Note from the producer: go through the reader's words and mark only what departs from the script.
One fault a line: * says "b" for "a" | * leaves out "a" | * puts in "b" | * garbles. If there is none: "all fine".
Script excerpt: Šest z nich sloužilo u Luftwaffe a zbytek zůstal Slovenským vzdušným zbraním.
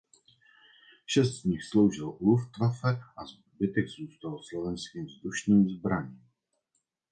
all fine